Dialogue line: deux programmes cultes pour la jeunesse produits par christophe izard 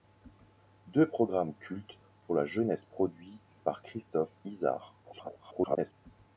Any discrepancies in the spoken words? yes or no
yes